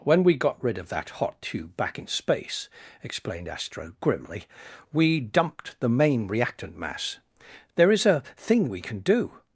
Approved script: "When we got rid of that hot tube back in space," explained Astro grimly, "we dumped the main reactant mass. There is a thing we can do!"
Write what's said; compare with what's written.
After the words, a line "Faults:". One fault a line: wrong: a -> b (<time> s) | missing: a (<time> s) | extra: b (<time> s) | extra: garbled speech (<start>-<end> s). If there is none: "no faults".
"When we got rid of that hot tube back in space," explained Astro grimly, "we dumped the main reactant mass. There is a thing we can do!"
Faults:
no faults